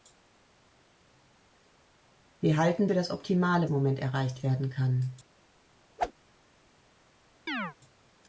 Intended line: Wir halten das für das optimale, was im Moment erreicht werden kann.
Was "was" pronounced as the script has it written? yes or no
no